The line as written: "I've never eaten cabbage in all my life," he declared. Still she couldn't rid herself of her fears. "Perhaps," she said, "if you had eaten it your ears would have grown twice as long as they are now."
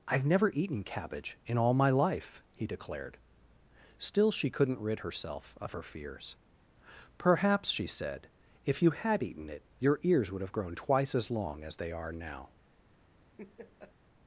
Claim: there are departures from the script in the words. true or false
false